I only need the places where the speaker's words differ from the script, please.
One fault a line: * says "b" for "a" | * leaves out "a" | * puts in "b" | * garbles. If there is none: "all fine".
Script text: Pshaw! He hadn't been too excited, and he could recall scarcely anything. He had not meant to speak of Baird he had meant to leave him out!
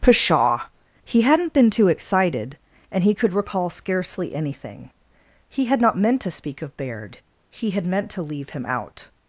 all fine